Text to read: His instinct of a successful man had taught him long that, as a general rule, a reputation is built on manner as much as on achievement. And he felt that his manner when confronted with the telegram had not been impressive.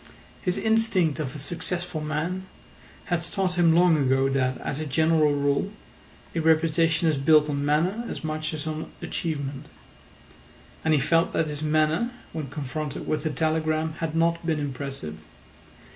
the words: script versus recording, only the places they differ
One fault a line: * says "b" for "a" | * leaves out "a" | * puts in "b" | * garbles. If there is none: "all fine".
* puts in "ago"